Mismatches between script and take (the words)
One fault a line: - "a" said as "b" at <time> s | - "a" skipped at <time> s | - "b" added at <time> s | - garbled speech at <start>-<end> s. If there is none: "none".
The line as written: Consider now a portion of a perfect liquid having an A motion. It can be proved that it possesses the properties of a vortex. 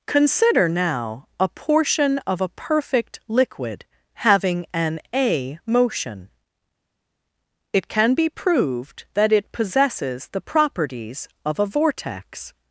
none